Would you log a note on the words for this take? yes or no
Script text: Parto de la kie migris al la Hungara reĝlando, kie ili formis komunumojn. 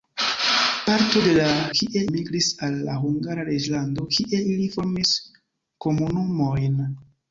no